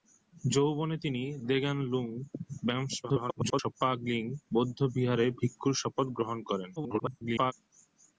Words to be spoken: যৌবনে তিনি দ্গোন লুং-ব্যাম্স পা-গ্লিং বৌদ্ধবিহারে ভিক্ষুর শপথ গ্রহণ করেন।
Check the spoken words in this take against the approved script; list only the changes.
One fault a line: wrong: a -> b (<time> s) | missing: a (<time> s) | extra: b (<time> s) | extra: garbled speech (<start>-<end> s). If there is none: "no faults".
extra: garbled speech (3.0-3.7 s)
extra: garbled speech (6.8-7.5 s)